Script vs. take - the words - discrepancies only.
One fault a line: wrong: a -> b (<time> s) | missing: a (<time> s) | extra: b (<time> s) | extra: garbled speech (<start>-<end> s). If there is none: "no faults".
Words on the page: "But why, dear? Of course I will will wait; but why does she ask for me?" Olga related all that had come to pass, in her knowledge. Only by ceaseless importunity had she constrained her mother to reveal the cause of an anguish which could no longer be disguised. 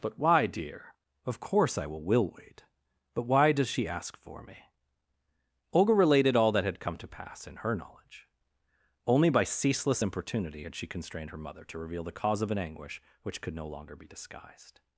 no faults